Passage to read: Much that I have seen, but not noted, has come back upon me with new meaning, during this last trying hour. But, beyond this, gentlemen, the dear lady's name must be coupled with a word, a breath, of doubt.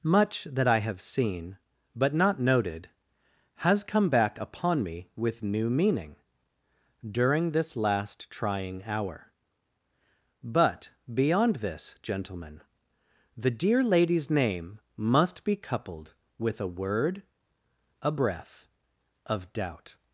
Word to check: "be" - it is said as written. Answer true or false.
true